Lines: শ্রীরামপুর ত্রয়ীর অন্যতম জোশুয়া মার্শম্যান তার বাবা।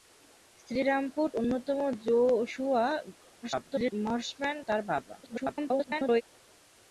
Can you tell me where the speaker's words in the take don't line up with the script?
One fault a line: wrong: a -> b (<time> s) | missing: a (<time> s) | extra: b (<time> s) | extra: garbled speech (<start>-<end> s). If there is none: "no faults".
missing: ত্রয়ীর (1.3 s)
extra: garbled speech (3.4-3.9 s)
extra: garbled speech (5.2-6.2 s)